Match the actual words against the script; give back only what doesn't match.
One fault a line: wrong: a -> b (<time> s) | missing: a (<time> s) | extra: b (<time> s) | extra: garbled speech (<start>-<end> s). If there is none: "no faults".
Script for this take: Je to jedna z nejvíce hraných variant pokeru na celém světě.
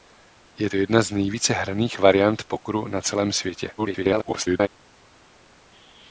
extra: garbled speech (3.8-4.7 s)